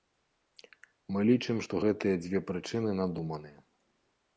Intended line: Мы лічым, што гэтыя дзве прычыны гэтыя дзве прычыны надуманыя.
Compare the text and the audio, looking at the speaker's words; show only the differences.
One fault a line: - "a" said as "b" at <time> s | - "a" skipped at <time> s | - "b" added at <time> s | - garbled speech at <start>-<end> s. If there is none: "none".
- "гэтыя дзве прычыны" skipped at 2.9 s